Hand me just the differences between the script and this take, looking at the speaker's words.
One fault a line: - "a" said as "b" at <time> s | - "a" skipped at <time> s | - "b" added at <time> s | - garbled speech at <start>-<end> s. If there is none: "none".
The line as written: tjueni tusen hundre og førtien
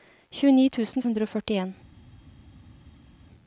none